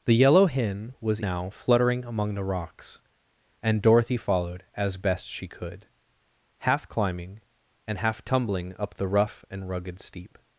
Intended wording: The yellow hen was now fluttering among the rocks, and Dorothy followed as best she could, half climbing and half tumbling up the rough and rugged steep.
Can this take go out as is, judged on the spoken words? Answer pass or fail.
pass